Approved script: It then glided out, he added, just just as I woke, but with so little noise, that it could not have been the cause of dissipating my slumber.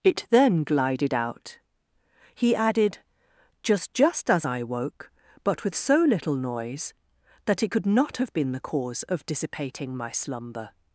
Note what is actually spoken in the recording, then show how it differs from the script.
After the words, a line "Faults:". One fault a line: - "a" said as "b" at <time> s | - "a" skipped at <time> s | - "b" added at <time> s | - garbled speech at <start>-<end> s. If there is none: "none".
It then glided out, he added, just just as I woke, but with so little noise, that it could not have been the cause of dissipating my slumber.
Faults:
none